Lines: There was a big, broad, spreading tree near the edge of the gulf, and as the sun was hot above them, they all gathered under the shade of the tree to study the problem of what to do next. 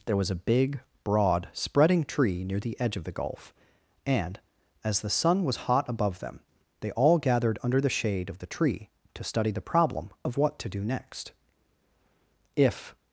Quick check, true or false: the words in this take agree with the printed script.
false